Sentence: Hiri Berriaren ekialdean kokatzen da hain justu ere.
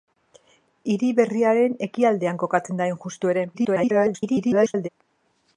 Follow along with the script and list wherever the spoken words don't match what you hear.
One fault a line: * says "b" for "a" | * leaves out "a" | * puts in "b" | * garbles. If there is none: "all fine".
* garbles